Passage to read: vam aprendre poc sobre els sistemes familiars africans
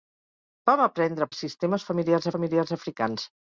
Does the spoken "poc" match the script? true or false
false